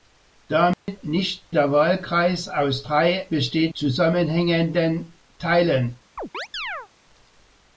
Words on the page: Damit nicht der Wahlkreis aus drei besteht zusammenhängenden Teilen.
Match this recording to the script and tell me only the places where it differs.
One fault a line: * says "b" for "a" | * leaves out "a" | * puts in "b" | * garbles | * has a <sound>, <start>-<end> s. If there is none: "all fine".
* has a dropout, 0.7-0.9 s
* has a chirp, 6.2-6.9 s